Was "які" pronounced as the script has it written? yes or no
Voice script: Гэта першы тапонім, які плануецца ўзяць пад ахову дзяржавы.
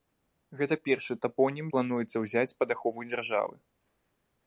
no